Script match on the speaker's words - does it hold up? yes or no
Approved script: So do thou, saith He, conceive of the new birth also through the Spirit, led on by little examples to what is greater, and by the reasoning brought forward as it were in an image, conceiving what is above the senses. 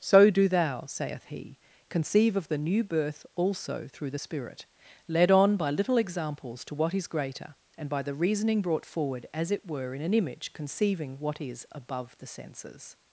yes